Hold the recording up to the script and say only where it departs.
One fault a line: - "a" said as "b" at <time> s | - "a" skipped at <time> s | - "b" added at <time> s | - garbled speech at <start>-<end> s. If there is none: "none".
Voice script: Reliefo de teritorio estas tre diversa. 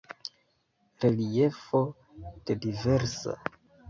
- "teritorio estas tre" skipped at 2.5 s